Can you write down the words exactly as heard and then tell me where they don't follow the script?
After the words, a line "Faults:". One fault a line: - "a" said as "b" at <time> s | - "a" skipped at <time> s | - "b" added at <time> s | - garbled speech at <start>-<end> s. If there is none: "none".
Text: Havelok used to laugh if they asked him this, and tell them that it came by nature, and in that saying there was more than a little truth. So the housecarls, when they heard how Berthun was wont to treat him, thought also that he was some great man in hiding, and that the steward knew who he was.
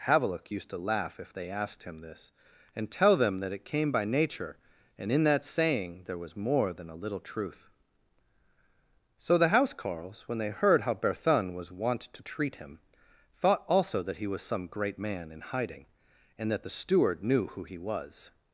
Havelok used to laugh if they asked him this, and tell them that it came by nature, and in that saying there was more than a little truth. So the housecarls, when they heard how Berthun was wont to treat him, thought also that he was some great man in hiding, and that the steward knew who he was.
Faults:
none